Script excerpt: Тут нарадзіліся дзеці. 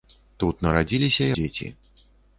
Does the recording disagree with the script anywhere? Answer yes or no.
no